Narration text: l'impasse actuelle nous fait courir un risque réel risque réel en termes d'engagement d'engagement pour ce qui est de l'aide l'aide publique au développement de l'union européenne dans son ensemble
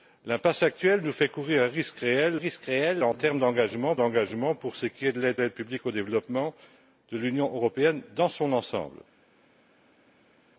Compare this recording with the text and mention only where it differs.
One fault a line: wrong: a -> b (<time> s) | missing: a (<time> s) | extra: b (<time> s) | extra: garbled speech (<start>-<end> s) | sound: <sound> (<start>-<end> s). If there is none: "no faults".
no faults